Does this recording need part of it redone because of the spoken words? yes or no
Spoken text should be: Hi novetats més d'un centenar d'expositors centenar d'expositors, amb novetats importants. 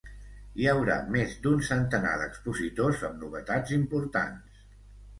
yes